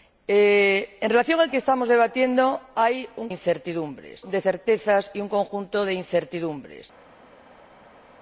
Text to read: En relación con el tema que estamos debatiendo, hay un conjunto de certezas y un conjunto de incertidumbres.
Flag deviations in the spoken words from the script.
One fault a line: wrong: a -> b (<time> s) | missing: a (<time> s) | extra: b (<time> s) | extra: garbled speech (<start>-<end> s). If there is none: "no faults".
missing: tema (1.5 s)
wrong: conjunto -> incertidumbres (3.3 s)